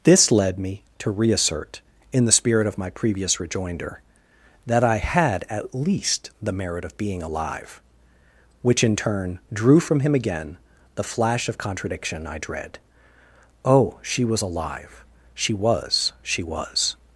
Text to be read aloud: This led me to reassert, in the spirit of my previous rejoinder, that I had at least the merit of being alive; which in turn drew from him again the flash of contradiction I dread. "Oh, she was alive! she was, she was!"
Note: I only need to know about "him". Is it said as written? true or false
true